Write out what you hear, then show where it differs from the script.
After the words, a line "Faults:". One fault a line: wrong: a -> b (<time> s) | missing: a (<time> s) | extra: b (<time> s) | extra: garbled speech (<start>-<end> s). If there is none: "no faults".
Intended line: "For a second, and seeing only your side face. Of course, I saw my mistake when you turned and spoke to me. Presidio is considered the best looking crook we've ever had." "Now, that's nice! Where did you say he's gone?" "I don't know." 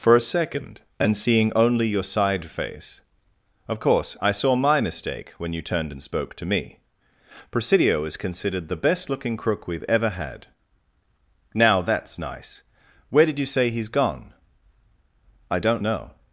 "For a second, and seeing only your side face. Of course, I saw my mistake when you turned and spoke to me. Presidio is considered the best looking crook we've ever had." "Now, that's nice! Where did you say he's gone?" "I don't know."
Faults:
no faults